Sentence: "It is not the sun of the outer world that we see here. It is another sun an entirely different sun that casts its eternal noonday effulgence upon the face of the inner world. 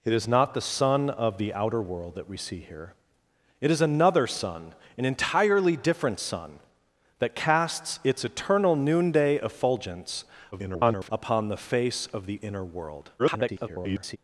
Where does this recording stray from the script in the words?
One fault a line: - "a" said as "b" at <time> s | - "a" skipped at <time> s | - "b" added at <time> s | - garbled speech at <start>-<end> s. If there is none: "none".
- garbled speech at 10.5-11.1 s
- garbled speech at 13.2-14.2 s